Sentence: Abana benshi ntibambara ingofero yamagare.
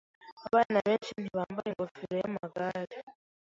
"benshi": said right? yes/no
yes